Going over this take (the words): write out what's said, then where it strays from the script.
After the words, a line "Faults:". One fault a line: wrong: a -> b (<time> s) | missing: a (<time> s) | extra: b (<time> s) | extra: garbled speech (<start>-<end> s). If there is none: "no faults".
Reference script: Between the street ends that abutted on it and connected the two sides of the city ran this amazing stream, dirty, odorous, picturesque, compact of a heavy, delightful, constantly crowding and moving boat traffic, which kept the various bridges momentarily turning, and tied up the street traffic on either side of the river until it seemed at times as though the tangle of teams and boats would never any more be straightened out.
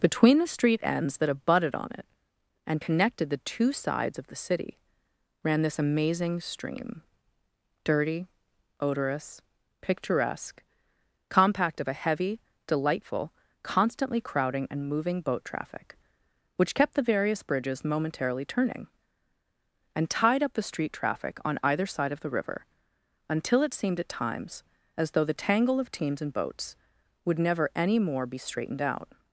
Between the street ends that abutted on it and connected the two sides of the city ran this amazing stream, dirty, odorous, picturesque, compact of a heavy, delightful, constantly crowding and moving boat traffic, which kept the various bridges momentarily turning, and tied up the street traffic on either side of the river until it seemed at times as though the tangle of teams and boats would never any more be straightened out.
Faults:
no faults